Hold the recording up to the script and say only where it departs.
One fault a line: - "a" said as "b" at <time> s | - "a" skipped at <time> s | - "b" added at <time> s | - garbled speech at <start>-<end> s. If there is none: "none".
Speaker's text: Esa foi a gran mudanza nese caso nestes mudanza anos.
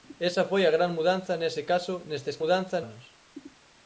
none